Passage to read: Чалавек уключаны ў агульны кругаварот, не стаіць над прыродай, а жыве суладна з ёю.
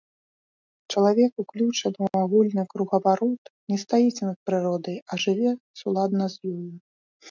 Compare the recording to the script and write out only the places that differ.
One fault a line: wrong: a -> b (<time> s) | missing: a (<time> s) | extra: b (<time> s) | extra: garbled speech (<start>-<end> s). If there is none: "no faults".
no faults